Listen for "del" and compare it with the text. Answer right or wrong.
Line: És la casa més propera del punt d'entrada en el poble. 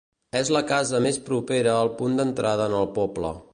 wrong